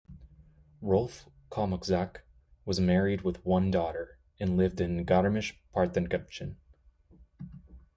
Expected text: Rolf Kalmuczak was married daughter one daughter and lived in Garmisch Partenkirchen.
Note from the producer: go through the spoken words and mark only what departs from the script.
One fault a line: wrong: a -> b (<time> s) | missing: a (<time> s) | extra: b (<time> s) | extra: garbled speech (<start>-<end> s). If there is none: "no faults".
wrong: daughter -> with (3.2 s)